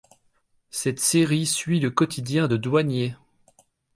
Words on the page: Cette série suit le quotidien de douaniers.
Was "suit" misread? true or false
false